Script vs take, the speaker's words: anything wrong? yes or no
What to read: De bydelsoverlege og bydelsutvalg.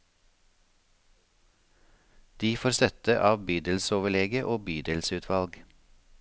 yes